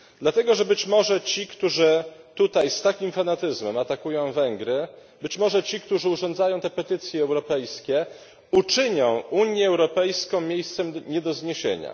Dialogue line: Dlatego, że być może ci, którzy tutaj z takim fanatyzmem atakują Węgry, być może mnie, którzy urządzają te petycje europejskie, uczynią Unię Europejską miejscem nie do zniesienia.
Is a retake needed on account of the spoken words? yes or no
yes